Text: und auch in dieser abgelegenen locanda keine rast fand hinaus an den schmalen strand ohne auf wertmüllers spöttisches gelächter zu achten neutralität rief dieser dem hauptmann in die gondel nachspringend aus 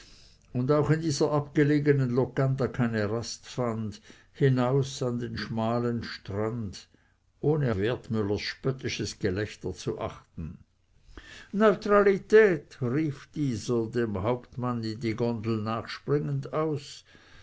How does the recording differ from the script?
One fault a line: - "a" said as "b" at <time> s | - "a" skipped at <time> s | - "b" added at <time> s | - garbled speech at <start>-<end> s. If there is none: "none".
- "auf" skipped at 7.8 s